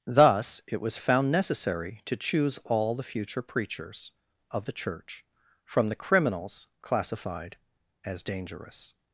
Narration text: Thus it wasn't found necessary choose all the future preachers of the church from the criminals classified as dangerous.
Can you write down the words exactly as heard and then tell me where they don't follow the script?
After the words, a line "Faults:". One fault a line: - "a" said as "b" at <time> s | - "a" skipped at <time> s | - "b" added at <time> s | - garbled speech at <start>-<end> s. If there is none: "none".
Thus it was found necessary to choose all the future preachers of the church from the criminals classified as dangerous.
Faults:
- "wasn't" said as "was" at 0.8 s
- "to" added at 2.0 s